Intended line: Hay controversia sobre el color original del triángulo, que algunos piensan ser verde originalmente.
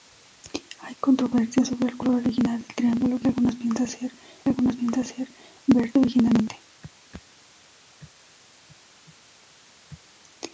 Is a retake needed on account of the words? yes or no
yes